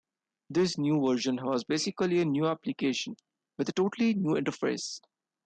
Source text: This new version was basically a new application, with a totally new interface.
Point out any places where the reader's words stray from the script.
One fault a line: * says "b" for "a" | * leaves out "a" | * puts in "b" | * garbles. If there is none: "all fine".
all fine